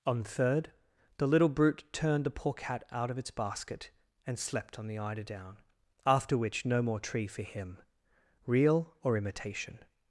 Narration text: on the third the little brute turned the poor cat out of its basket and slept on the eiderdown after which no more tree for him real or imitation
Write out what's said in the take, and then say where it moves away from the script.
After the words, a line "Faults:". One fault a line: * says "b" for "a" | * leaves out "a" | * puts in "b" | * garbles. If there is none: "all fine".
on third the little brute turned the poor cat out of its basket and slept on the eiderdown after which no more tree for him real or imitation
Faults:
* leaves out "the"